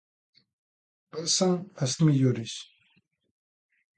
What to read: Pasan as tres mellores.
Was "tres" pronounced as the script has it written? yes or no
no